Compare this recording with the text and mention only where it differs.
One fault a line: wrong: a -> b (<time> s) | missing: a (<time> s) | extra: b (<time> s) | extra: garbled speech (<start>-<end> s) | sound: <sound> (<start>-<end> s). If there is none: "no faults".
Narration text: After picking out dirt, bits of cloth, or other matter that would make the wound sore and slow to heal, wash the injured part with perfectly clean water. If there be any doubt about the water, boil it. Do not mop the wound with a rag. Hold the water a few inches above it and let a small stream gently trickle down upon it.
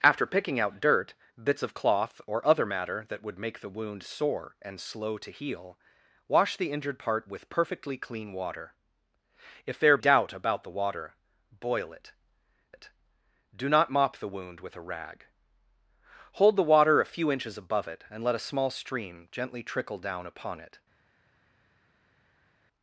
missing: be any (10.0 s)
extra: it (12.7 s)